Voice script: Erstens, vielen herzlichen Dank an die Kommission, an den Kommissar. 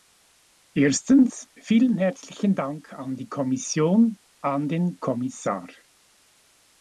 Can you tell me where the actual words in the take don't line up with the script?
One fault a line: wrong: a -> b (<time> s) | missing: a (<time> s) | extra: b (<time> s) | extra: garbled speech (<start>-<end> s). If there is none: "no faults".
no faults